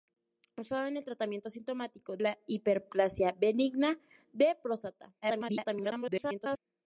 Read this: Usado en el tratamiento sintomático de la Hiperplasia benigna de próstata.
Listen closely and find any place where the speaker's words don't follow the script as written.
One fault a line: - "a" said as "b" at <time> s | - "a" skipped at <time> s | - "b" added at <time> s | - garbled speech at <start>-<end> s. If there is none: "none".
- "de" skipped at 2.2 s
- garbled speech at 5.2-6.6 s